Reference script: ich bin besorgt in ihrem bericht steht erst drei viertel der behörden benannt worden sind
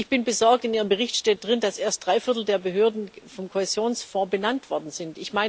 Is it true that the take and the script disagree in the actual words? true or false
true